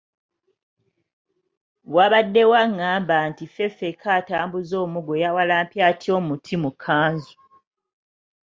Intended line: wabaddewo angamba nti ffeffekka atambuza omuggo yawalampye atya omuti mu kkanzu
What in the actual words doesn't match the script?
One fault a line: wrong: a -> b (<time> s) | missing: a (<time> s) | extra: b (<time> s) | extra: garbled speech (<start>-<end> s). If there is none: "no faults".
no faults